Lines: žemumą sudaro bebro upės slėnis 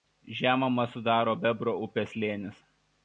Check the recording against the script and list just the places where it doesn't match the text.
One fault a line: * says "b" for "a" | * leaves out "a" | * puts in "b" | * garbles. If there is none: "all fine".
all fine